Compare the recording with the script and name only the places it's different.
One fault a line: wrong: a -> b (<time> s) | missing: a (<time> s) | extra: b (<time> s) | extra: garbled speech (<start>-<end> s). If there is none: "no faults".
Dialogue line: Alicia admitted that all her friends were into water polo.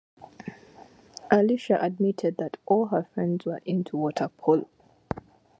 no faults